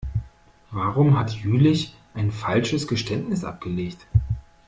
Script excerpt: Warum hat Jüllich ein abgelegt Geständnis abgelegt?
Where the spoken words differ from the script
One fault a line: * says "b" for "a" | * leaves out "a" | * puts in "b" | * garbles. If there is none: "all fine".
* says "falsches" for "abgelegt"